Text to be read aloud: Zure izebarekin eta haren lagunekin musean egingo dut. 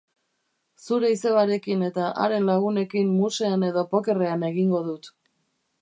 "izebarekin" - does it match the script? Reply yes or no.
yes